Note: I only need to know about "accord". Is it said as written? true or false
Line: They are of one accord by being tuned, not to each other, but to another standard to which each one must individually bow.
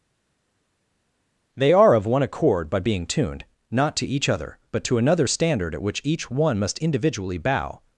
true